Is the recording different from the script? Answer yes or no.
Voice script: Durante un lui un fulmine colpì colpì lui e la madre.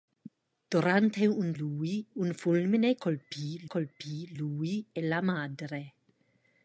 no